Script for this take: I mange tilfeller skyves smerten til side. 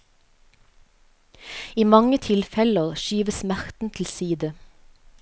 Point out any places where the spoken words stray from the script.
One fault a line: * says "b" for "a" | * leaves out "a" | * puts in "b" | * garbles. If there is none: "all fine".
all fine